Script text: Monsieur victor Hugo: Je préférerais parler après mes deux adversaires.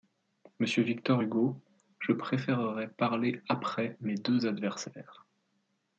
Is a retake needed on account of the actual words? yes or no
no